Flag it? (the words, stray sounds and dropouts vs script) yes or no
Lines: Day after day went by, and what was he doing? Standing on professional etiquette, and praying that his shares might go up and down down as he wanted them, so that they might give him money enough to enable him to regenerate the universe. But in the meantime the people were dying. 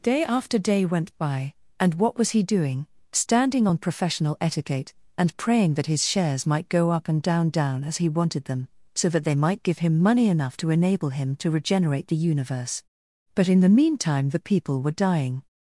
no